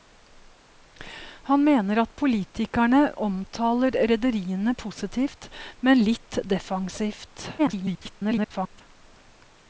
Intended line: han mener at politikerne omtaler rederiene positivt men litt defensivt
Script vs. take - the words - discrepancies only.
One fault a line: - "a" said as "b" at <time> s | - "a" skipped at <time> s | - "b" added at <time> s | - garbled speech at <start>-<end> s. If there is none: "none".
- garbled speech at 7.6-8.8 s